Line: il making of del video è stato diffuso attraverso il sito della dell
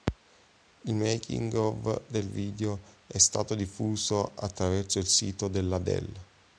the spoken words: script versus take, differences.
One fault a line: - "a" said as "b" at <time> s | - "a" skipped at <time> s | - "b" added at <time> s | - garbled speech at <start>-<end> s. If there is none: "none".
none